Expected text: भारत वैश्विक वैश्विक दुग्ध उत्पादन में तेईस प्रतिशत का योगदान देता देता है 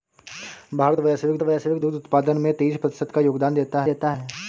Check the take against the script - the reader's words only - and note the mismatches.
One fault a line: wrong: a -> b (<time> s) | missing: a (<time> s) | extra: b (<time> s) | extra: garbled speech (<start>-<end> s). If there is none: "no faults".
no faults